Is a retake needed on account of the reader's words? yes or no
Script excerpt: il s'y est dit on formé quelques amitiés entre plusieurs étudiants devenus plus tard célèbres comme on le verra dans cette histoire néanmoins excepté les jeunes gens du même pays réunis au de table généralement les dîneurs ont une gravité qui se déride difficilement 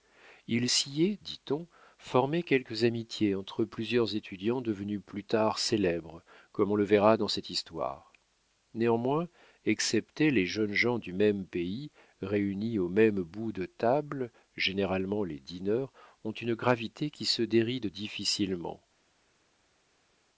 yes